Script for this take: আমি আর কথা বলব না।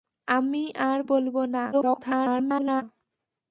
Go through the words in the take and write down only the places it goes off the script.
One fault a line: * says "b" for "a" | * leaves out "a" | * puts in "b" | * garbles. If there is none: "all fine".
* leaves out "কথা"
* garbles